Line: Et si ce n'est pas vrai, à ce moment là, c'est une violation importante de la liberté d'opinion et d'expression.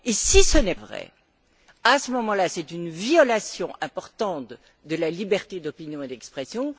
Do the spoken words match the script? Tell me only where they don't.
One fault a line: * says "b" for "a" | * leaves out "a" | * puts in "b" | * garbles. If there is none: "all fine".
* leaves out "pas"